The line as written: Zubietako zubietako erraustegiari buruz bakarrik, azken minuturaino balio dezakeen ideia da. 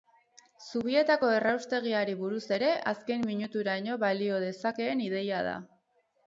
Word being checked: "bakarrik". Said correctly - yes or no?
no